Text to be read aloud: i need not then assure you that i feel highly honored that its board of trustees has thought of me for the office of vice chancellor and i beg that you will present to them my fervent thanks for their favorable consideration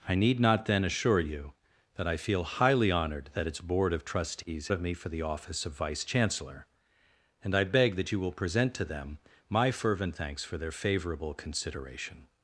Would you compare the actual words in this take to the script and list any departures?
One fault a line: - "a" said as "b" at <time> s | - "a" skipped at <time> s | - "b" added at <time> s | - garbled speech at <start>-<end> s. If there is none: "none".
- "has thought" skipped at 4.7 s